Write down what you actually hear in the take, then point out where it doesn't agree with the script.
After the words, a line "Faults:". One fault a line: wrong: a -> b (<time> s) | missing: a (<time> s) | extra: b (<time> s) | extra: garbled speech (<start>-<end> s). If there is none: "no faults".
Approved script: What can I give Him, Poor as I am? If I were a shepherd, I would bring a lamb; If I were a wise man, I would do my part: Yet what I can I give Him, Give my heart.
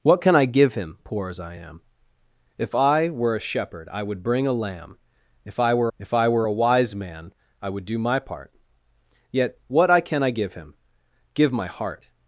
What can I give Him, Poor as I am? If I were a shepherd, I would bring a lamb; If I were If I were a wise man, I would do my part: Yet what I can I give Him, Give my heart.
Faults:
extra: If I were (6.0 s)